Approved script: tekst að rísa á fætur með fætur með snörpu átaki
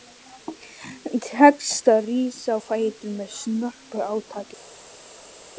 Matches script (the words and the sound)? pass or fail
fail